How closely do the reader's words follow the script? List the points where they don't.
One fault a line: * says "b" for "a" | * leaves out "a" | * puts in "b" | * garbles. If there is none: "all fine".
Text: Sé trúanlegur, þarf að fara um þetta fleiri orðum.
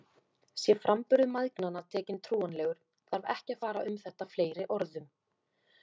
* puts in "framburður mæðgnanna tekinn"
* puts in "ekki"